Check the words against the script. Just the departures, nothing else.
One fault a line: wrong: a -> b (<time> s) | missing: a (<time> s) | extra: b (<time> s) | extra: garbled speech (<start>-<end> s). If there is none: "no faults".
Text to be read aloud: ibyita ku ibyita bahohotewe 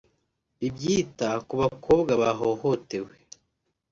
wrong: ibyita -> bakobwa (1.6 s)